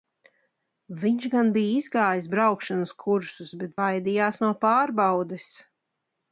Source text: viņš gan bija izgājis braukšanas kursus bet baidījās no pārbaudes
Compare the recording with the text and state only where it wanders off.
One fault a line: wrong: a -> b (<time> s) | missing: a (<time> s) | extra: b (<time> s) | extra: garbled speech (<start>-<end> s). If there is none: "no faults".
no faults